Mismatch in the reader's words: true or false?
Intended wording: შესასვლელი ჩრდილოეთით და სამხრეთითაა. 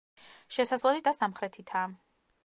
true